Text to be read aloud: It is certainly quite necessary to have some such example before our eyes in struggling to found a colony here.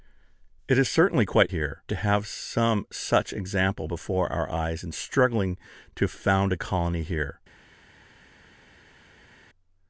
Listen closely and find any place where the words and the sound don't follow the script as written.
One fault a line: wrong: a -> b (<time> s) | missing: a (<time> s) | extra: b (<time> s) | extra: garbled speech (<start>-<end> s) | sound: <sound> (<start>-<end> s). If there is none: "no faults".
wrong: necessary -> here (1.5 s)